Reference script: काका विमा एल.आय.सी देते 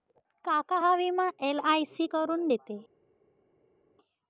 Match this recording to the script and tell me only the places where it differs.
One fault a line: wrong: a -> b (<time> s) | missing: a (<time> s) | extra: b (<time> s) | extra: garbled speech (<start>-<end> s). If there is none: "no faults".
extra: हा (0.8 s)
extra: करून (2.0 s)